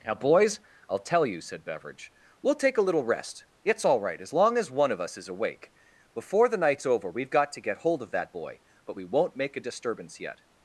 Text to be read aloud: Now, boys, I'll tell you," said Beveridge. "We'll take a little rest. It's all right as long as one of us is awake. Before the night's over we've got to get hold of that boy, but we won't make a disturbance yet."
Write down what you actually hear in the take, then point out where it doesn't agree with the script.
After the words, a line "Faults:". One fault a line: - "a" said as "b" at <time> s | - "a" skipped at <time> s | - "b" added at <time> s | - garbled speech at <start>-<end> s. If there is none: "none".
Now, boys, I'll tell you," said Beveridge. "We'll take a little rest. It's all right as long as one of us is awake. Before the night's over we've got to get hold of that boy, but we won't make a disturbance yet."
Faults:
none